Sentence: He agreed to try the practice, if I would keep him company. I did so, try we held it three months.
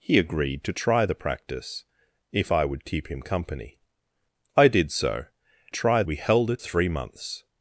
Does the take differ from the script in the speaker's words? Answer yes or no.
no